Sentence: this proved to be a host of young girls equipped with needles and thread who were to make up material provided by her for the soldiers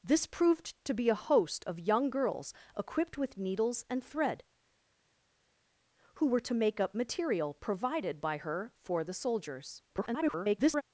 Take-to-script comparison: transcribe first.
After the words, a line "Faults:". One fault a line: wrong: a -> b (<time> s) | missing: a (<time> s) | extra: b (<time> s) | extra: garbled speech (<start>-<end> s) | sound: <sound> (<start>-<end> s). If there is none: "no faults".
this proved to be a host of young girls equipped with needles and thread who were to make up material provided by her for the soldiers [garbled]
Faults:
extra: garbled speech (9.9-10.8 s)